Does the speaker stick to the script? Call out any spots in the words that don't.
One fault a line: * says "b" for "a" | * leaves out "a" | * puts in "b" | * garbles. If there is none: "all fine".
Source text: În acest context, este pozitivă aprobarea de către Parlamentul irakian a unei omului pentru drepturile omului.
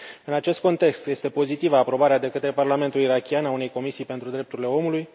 * says "comisii" for "omului"